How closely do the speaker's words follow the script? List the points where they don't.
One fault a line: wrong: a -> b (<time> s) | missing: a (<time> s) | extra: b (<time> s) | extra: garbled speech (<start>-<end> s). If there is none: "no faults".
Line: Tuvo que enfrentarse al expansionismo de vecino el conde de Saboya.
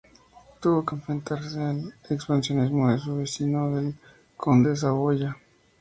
extra: su (3.0 s)